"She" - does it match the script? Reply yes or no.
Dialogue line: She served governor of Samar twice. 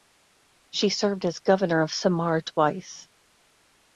yes